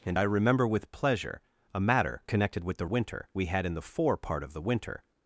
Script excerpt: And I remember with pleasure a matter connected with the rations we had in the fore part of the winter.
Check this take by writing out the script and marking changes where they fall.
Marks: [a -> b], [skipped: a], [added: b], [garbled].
And I remember with pleasure a matter connected with the [rations -> winter] we had in the fore part of the winter.